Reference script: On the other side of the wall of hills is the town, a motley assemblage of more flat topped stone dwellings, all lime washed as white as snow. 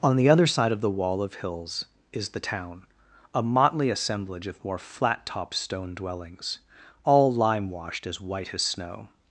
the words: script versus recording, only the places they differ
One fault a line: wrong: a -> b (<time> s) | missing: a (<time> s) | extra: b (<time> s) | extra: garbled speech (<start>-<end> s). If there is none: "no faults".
no faults